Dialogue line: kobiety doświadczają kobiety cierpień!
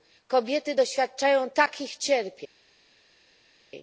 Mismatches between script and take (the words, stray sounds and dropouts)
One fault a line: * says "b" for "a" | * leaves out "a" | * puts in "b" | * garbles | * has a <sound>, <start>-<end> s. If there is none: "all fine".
* says "takich" for "kobiety"